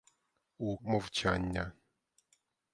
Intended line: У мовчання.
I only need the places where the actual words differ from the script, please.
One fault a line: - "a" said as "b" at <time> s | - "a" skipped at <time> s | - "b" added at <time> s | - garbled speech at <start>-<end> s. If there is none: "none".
none